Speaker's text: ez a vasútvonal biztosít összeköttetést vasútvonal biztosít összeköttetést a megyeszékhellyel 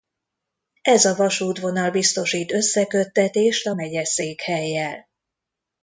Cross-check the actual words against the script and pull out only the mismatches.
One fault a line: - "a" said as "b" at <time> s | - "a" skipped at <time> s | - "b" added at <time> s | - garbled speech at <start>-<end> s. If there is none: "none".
- "vasútvonal biztosít összeköttetést" skipped at 3.7 s